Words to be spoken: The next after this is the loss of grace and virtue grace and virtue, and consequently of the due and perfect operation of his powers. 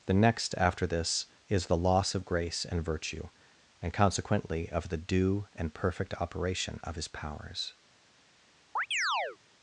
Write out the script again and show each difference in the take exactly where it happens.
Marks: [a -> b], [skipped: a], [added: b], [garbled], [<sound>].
The next after this is the loss of grace and virtue [skipped: grace and virtue,] and consequently of the due and perfect operation of his powers. [chirp]